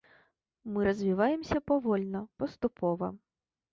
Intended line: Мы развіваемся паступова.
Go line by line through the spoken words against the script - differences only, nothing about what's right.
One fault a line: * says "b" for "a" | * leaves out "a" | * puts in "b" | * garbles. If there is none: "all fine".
* puts in "павольна"